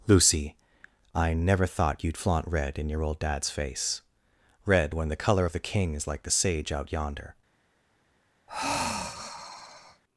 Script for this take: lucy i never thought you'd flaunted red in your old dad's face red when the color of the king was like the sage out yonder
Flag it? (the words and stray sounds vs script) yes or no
yes